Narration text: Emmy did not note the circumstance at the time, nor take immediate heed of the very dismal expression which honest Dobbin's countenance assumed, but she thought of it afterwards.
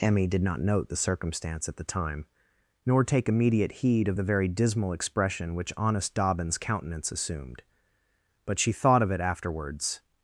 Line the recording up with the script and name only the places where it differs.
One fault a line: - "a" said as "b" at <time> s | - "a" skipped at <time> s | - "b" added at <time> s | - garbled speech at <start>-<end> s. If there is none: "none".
none